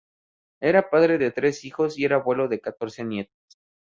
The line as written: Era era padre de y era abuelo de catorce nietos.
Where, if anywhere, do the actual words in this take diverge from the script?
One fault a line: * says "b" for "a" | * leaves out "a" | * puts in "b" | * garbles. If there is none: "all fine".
* leaves out "era"
* puts in "tres hijos"